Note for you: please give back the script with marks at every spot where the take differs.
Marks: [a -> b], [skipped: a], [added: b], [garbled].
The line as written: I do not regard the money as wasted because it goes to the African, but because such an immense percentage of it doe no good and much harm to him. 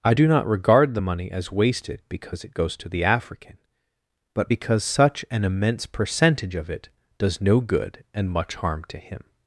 I do not regard the money as wasted because it goes to the African, but because such an immense percentage of it [doe -> does] no good and much harm to him.